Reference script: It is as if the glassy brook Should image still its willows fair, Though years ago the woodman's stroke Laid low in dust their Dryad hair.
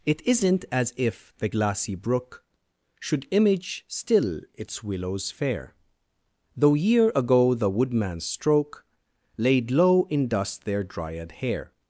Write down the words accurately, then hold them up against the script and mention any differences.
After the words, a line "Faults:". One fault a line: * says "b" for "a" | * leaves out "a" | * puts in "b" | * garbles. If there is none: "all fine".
It isn't as if the glassy brook Should image still its willows fair, Though year ago the woodman's stroke Laid low in dust their Dryad hair.
Faults:
* says "isn't" for "is"
* says "year" for "years"